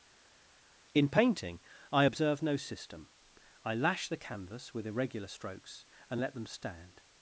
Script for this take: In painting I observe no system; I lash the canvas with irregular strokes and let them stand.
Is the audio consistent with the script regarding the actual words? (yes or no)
yes